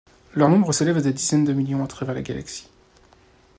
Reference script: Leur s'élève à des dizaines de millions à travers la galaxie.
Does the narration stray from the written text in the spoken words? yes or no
yes